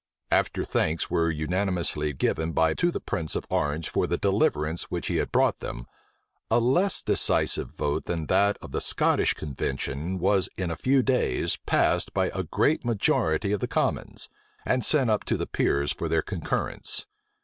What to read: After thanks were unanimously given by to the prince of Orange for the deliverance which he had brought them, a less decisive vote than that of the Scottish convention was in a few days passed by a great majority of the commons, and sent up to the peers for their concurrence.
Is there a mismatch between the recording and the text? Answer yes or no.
no